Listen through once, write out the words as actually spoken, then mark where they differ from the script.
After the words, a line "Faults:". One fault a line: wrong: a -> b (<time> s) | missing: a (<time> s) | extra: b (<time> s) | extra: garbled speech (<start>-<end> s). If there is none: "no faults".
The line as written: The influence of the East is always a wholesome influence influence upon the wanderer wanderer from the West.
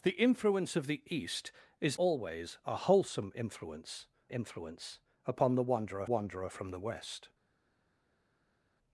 The influence of the East is always a wholesome influence influence upon the wanderer wanderer from the West.
Faults:
no faults